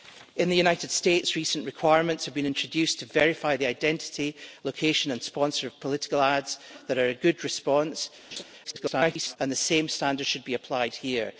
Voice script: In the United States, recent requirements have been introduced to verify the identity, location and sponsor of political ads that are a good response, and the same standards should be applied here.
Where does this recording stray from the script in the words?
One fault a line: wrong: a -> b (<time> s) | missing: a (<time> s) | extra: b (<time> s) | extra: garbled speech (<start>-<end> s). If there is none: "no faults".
extra: garbled speech (8.6-9.4 s)